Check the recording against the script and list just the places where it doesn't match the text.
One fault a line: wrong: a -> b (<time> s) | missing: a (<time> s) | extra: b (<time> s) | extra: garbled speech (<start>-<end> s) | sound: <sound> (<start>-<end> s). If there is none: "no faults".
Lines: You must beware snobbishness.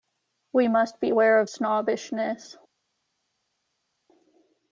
wrong: You -> We (0.5 s)
extra: of (1.4 s)